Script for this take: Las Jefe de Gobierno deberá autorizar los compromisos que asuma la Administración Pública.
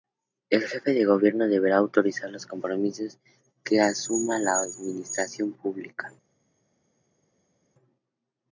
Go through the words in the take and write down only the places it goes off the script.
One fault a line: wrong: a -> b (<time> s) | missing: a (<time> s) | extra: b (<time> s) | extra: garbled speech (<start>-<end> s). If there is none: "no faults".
wrong: Las -> El (0.5 s)